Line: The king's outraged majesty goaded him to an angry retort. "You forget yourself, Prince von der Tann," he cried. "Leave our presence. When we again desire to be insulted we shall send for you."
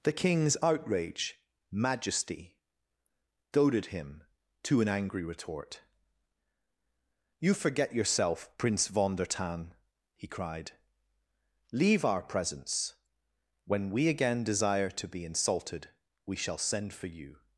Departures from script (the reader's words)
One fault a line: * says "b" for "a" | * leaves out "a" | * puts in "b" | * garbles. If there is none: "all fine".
* says "outrage" for "outraged"